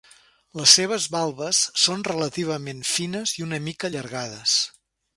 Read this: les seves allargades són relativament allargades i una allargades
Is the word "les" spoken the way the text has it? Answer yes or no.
yes